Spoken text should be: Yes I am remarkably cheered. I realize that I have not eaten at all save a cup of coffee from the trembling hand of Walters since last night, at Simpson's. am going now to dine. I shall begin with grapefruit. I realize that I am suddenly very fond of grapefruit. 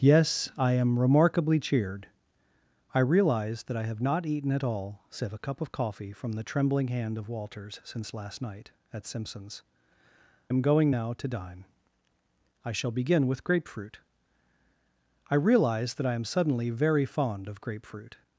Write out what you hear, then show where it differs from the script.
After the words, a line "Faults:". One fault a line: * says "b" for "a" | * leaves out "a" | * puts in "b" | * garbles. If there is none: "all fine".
Yes I am remarkably cheered. I realize that I have not eaten at all save a cup of coffee from the trembling hand of Walters since last night, at Simpson's. am going now to dine. I shall begin with grapefruit. I realize that I am suddenly very fond of grapefruit.
Faults:
all fine